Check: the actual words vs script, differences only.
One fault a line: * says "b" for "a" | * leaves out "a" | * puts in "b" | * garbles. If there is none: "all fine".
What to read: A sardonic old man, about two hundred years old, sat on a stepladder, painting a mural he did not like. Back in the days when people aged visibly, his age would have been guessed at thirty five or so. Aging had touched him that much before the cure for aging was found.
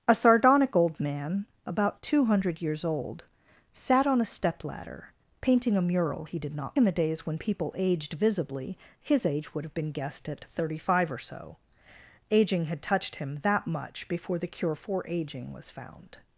* leaves out "like Back"